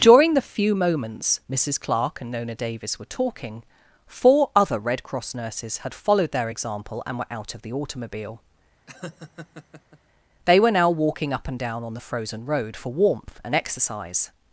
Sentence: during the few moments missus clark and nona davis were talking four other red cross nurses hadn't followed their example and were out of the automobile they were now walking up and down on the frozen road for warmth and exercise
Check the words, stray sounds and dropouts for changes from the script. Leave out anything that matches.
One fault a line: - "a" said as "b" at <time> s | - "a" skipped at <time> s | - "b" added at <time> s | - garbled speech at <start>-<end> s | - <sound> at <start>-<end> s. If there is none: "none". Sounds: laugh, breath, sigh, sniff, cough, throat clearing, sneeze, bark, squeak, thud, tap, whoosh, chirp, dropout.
- "hadn't" said as "had" at 5.8 s
- laugh at 8.9-10.0 s